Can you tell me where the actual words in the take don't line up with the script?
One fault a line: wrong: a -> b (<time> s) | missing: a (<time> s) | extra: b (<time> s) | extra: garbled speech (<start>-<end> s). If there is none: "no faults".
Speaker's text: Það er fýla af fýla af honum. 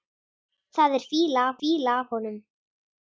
no faults